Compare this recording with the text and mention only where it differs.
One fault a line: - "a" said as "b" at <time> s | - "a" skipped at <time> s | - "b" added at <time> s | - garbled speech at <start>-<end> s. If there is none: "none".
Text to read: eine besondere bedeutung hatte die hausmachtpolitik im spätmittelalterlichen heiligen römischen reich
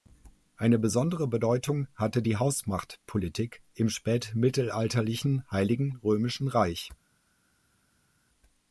none